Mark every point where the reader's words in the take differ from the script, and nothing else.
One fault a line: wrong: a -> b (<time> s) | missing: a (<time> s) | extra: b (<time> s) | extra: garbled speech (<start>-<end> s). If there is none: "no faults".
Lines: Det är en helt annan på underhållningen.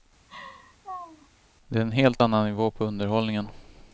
extra: nivå (2.4 s)